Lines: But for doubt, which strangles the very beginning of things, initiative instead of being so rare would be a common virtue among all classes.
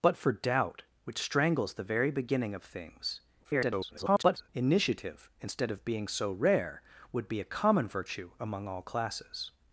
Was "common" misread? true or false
false